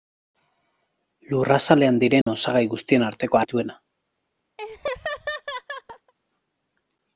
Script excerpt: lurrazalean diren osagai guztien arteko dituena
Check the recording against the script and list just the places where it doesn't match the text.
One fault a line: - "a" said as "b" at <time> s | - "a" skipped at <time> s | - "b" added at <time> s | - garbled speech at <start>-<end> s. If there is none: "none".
none